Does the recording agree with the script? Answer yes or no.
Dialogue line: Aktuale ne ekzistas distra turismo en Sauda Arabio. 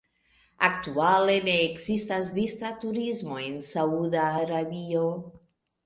yes